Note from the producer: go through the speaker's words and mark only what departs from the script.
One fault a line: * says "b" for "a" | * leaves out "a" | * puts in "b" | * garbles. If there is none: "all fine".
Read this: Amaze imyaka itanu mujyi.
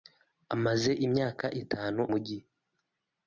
all fine